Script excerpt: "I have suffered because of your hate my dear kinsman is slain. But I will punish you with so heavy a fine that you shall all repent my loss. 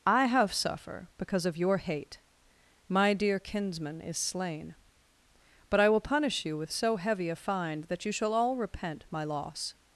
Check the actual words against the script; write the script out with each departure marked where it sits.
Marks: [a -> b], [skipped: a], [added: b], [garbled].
"I have [suffered -> suffer] because of your hate my dear kinsman is slain. But I will punish you with so heavy a fine that you shall all repent my loss.